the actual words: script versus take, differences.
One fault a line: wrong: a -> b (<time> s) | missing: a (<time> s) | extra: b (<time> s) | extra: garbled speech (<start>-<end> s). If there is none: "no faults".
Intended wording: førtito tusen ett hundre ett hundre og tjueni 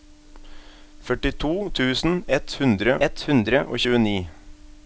no faults